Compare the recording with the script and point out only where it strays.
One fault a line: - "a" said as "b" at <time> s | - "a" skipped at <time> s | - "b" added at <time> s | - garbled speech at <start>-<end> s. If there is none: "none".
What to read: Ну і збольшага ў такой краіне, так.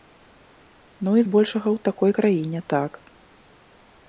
none